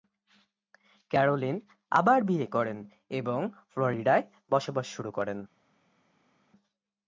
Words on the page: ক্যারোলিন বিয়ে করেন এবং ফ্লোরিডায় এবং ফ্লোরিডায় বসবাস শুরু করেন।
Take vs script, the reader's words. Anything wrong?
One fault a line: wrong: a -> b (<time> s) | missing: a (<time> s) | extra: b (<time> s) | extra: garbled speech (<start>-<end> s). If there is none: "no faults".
extra: আবার (1.9 s)
missing: এবং ফ্লোরিডায় (4.2 s)